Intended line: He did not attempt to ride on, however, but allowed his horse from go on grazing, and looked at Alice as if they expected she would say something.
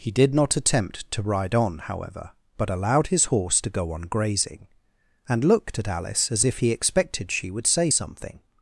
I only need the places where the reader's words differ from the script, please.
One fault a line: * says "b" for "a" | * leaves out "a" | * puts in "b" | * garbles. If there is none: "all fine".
* says "to" for "from"
* says "he" for "they"